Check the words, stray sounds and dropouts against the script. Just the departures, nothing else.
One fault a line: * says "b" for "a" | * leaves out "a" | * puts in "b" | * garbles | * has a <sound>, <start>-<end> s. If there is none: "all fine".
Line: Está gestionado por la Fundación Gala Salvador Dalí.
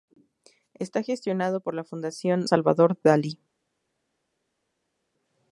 * leaves out "Gala"